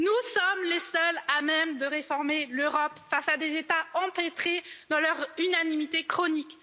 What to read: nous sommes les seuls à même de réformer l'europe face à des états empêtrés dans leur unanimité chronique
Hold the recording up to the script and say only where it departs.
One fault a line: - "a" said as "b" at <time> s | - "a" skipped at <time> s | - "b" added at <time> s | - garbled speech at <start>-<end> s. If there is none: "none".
none